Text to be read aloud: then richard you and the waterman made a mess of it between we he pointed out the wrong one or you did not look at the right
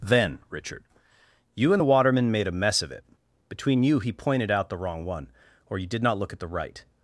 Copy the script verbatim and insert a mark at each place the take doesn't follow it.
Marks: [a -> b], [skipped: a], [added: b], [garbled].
then richard you and the waterman made a mess of it between [we -> you] he pointed out the wrong one or you did not look at the right